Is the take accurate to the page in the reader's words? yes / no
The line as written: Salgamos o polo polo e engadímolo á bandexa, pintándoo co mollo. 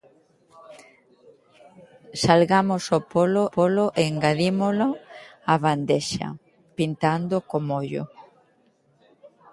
yes